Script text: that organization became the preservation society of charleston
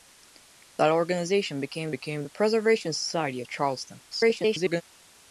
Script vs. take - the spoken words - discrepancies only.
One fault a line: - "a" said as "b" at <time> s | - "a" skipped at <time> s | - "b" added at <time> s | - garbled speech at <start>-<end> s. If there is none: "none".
- "became" added at 1.9 s
- garbled speech at 4.1-4.8 s